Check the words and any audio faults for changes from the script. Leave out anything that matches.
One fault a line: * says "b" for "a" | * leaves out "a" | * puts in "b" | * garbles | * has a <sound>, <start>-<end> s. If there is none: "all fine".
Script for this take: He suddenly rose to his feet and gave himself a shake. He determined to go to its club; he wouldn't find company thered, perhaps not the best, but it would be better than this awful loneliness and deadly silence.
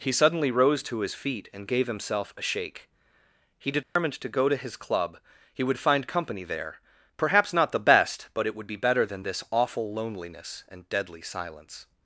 * has a dropout, 3.8-4.0 s
* says "his" for "its"
* says "would" for "wouldn't"
* says "there" for "thered"